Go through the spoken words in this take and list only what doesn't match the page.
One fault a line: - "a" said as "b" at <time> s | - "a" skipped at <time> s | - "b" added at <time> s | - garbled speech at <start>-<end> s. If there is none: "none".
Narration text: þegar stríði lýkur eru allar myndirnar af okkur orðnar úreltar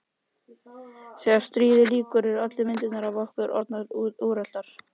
none